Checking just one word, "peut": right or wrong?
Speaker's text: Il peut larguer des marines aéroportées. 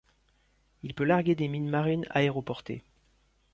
right